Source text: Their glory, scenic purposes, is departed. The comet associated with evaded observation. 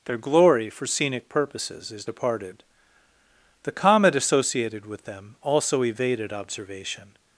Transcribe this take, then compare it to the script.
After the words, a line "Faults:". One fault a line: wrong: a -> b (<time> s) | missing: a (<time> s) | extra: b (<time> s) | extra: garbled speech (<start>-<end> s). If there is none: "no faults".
Their glory, for scenic purposes, is departed. The comet associated with them also evaded observation.
Faults:
extra: for (0.7 s)
extra: them also (5.0 s)